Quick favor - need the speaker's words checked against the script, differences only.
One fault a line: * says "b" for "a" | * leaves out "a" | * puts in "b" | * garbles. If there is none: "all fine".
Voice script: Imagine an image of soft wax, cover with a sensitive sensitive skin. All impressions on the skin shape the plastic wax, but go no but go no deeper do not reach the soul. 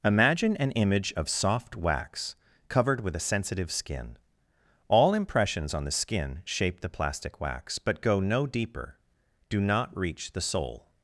* says "covered" for "cover"
* leaves out "sensitive"
* leaves out "but go no"